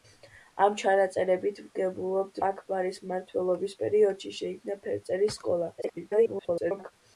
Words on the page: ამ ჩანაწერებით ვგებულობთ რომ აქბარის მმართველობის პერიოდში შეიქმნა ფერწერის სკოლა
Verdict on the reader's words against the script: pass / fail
fail